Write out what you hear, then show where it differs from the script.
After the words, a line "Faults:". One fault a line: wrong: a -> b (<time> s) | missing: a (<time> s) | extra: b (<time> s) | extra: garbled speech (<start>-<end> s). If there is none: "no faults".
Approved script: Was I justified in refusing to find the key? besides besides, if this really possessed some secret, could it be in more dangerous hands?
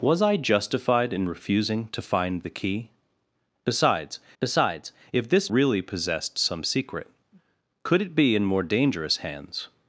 Was I justified in refusing to find the key? besides besides, if this really possessed some secret, could it be in more dangerous hands?
Faults:
no faults